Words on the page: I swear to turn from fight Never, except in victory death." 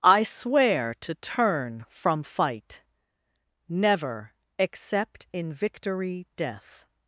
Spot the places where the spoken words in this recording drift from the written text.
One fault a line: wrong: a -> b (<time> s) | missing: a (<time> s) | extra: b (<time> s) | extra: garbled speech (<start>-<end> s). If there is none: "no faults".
no faults